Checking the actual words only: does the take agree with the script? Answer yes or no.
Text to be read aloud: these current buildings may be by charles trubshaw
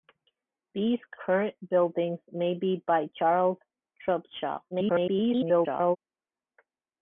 no